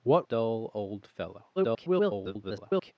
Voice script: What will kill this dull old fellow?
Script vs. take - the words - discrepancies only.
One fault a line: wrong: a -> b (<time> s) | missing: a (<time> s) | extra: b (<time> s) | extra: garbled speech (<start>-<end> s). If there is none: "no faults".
missing: will kill this (0.3 s)
extra: garbled speech (1.6-2.9 s)